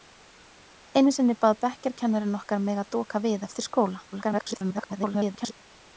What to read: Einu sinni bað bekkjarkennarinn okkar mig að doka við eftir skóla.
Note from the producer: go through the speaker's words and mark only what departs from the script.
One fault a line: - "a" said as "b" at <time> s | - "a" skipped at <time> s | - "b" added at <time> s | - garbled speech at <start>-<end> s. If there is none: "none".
- garbled speech at 4.1-5.5 s